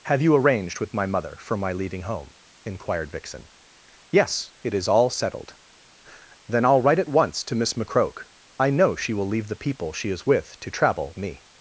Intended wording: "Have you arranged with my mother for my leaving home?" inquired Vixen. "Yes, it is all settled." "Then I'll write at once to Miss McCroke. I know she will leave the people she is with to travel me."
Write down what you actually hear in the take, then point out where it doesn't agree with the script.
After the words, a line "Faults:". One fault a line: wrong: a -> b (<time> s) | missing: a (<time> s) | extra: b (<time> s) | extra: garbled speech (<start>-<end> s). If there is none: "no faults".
"Have you arranged with my mother for my leaving home?" inquired Vixen. "Yes, it is all settled." "Then I'll write at once to Miss McCroke. I know she will leave the people she is with to travel me."
Faults:
no faults